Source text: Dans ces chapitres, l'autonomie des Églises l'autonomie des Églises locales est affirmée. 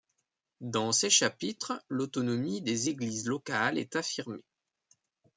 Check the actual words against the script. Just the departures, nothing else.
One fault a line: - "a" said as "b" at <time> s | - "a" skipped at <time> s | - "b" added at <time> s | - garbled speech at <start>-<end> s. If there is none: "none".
- "l'autonomie des Églises" skipped at 3.3 s